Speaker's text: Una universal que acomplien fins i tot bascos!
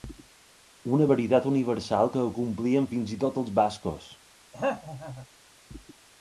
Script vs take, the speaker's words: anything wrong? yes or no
yes